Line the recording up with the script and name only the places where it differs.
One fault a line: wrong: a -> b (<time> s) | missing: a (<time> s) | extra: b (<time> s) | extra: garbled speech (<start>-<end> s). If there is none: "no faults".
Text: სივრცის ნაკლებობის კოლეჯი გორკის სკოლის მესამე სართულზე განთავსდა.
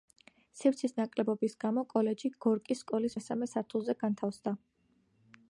extra: გამო (1.6 s)